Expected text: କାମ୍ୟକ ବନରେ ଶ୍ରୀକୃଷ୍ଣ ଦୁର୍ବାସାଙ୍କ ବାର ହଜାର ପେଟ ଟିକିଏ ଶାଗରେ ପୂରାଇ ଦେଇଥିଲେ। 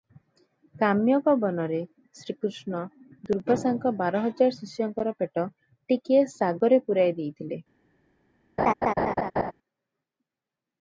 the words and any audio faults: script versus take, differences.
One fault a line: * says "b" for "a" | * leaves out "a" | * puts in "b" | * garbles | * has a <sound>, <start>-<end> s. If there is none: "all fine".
* puts in "ଶିଷ୍ୟଙ୍କର"
* has a laugh, 8.6-9.5 s